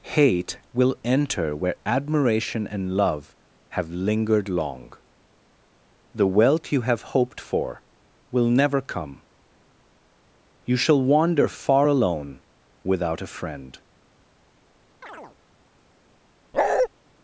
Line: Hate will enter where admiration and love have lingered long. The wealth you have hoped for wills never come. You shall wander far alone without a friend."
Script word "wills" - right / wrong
wrong